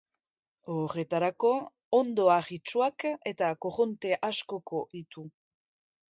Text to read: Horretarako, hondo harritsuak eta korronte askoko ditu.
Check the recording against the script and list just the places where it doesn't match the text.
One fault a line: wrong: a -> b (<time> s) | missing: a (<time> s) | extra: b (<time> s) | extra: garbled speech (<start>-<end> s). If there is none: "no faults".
no faults